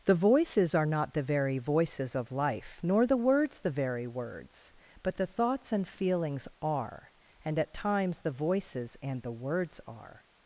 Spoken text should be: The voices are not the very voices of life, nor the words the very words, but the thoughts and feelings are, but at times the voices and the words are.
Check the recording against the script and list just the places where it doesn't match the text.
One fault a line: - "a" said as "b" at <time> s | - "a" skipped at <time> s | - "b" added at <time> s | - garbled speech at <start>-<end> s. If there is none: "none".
- "but" said as "and" at 7.5 s